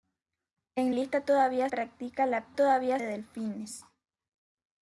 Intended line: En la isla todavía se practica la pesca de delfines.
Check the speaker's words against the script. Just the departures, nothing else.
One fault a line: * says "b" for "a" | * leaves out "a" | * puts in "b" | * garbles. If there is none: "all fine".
* leaves out "la"
* leaves out "se"
* says "todavía" for "pesca"